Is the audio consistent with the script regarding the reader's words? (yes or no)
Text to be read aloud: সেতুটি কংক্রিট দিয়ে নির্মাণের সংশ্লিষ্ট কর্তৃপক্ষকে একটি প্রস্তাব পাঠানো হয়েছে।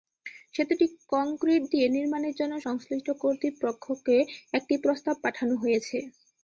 no